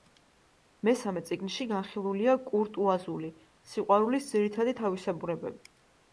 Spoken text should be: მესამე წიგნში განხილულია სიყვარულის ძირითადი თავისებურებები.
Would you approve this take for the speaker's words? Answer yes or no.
no